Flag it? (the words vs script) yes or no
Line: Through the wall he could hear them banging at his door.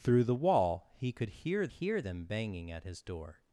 yes